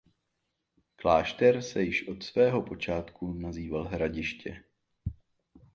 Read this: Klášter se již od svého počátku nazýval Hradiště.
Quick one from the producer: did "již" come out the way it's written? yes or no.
yes